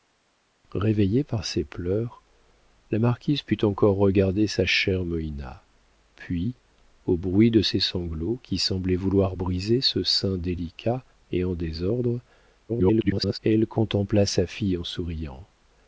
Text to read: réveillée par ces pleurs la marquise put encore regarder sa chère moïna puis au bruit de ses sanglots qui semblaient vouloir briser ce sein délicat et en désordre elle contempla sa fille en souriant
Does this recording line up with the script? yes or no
no